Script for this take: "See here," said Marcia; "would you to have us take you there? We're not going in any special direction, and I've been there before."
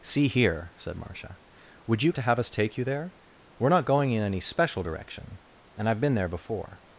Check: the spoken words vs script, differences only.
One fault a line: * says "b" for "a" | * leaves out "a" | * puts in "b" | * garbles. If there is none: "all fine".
all fine